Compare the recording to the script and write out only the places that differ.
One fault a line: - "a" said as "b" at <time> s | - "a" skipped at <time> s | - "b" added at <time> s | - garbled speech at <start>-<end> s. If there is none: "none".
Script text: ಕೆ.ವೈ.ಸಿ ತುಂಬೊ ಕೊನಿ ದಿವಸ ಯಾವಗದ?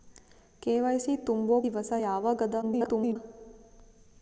- "ಕೊನಿ" skipped at 1.6 s
- garbled speech at 2.6-3.2 s